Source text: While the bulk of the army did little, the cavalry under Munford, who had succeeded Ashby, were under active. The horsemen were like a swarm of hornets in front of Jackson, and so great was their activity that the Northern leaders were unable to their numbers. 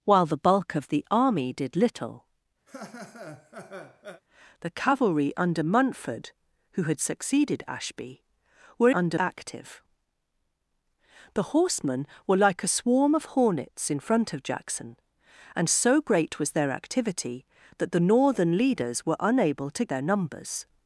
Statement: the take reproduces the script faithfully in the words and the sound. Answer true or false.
false